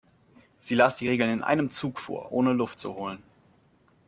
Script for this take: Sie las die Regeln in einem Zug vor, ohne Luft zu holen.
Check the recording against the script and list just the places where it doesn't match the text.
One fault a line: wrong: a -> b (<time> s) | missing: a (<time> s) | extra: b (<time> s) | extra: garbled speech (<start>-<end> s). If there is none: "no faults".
no faults